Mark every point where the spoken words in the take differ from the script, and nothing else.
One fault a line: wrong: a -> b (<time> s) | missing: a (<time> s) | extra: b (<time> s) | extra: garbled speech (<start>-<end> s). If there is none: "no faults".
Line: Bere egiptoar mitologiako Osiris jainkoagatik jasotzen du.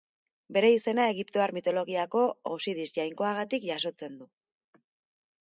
extra: izena (0.8 s)